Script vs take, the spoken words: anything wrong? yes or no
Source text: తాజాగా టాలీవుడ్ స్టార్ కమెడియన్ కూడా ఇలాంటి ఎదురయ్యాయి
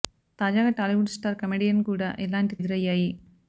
no